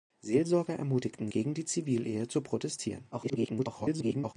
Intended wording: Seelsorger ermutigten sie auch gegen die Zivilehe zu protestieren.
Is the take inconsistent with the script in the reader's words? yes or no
yes